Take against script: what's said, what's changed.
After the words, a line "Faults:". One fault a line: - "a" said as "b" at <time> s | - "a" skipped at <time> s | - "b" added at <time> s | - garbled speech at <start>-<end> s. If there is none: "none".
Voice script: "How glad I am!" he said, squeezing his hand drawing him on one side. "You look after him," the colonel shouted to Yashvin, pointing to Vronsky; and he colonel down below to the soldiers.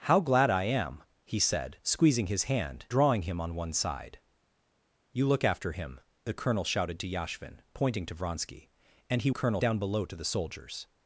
"How glad I am!" he said, squeezing his hand drawing him on one side. "You look after him," the colonel shouted to Yashvin, pointing to Vronsky; and he colonel down below to the soldiers.
Faults:
none